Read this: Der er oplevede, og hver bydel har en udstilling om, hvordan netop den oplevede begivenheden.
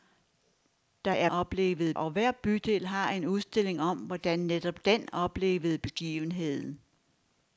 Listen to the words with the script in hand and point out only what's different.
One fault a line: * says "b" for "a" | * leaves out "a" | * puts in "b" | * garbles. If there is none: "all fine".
all fine